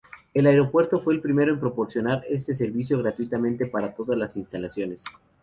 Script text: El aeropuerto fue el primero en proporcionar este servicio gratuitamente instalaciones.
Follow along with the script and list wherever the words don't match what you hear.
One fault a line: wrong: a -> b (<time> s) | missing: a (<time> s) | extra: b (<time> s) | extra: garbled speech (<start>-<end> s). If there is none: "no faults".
extra: para todas las (3.7 s)